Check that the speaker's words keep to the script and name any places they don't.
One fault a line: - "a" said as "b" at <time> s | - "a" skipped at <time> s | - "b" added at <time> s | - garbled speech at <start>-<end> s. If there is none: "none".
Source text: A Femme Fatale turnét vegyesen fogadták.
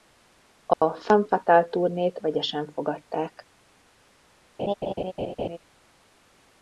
none